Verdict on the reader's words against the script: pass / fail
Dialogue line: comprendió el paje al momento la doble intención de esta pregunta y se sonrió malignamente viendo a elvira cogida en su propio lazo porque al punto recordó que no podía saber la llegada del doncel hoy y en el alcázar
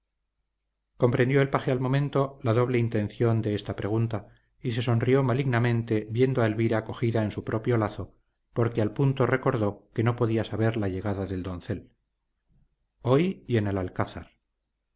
pass